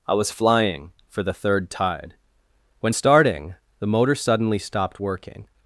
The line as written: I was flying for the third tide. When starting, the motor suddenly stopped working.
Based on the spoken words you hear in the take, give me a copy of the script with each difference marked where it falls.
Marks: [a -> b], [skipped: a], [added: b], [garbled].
I was flying for the third tide. When starting, the motor suddenly stopped working.